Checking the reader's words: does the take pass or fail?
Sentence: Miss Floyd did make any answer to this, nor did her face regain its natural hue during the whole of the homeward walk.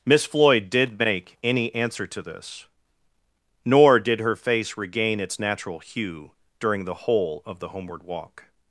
pass